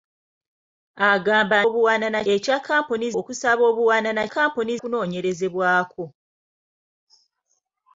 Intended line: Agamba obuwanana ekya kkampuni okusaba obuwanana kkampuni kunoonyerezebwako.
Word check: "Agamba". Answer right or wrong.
right